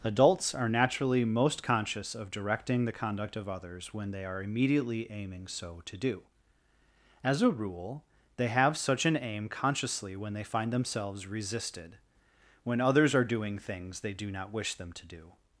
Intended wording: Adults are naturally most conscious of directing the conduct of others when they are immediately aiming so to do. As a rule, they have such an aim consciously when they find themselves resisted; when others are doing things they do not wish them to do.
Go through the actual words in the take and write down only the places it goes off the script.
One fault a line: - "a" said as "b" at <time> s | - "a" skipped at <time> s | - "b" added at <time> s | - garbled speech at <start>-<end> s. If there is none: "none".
none